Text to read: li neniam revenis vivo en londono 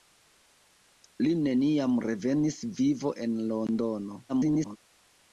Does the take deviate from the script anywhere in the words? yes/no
yes